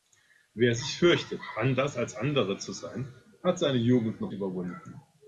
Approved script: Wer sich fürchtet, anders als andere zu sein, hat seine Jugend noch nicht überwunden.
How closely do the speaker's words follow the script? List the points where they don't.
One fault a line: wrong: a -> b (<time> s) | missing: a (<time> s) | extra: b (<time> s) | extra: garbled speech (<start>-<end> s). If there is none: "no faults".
missing: nicht (4.3 s)